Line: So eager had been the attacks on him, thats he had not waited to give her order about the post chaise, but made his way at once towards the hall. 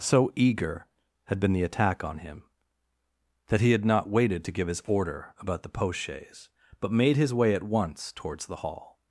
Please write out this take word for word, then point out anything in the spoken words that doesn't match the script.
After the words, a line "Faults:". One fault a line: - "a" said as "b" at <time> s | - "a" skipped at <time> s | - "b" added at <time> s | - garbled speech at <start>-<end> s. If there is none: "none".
So eager had been the attack on him, that he had not waited to give his order about the post chaise, but made his way at once towards the hall.
Faults:
- "attacks" said as "attack" at 1.6 s
- "thats" said as "that" at 3.5 s
- "her" said as "his" at 4.7 s